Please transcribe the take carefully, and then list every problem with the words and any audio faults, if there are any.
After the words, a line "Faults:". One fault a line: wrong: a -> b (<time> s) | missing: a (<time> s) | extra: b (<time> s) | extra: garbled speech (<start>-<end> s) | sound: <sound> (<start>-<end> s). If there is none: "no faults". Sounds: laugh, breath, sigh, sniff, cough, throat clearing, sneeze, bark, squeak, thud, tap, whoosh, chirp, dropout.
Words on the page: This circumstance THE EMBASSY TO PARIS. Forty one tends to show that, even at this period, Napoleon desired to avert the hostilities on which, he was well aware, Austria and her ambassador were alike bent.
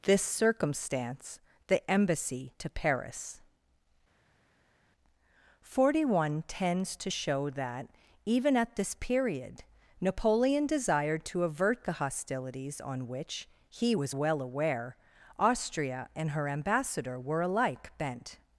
This circumstance THE EMBASSY TO PARIS. Forty one tends to show that, even at this period, Napoleon desired to avert the hostilities on which, he was well aware, Austria and her ambassador were alike bent.
Faults:
no faults